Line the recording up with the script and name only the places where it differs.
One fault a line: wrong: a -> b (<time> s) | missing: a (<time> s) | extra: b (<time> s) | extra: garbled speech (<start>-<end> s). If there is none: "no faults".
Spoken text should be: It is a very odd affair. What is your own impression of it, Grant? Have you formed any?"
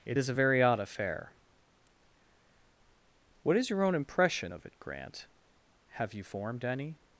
no faults